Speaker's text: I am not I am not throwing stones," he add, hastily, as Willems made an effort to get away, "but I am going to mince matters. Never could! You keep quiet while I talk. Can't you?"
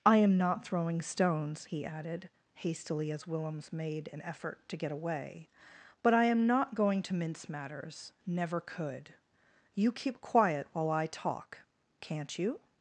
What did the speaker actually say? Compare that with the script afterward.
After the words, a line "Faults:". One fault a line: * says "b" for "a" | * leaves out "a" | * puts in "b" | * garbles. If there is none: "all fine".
I am not throwing stones," he added, hastily, as Willems made an effort to get away, "but I am not going to mince matters. Never could! You keep quiet while I talk. Can't you?"
Faults:
* leaves out "I am not"
* says "added" for "add"
* puts in "not"